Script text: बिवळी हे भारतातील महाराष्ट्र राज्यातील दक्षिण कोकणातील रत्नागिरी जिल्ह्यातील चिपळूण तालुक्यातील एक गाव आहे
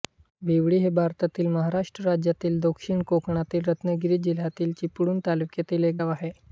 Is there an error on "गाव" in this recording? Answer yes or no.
no